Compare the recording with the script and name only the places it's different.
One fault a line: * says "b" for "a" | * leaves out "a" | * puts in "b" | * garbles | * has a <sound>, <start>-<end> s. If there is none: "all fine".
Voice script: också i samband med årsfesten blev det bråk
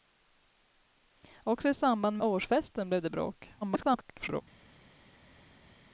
* leaves out "med"
* garbles